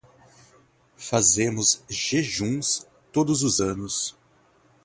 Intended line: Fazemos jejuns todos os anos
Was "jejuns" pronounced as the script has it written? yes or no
yes